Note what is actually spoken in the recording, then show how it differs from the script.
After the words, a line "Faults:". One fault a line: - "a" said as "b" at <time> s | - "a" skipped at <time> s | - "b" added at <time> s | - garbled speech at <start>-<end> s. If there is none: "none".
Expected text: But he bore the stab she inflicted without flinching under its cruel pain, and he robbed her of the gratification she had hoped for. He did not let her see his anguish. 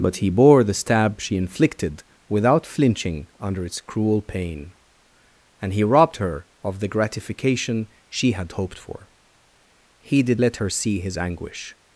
But he bore the stab she inflicted without flinching under its cruel pain, and he robbed her of the gratification she had hoped for. He did let her see his anguish.
Faults:
- "not" skipped at 10.4 s